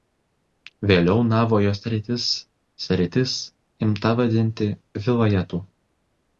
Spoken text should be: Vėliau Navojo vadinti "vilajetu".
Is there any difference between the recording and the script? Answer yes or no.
yes